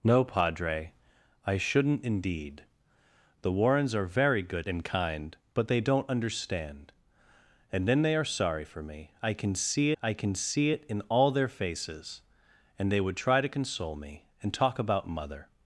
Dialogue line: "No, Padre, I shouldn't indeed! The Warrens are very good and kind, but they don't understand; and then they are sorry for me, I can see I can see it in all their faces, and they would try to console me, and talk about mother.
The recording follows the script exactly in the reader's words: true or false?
true